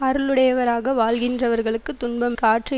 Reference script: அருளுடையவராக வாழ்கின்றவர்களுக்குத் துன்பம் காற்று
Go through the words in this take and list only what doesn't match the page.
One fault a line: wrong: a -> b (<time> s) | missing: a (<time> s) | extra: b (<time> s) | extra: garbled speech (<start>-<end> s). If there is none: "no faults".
no faults